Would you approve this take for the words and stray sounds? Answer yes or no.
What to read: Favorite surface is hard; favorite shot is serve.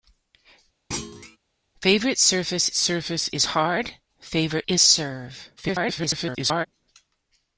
no